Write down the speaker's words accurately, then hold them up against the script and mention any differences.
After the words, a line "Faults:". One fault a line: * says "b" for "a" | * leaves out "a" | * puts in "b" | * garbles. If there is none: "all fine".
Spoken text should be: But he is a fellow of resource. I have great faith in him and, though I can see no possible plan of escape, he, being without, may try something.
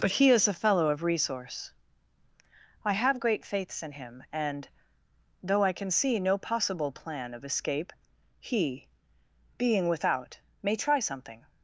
But he is a fellow of resource. I have great faiths in him and, though I can see no possible plan of escape, he, being without, may try something.
Faults:
* says "faiths" for "faith"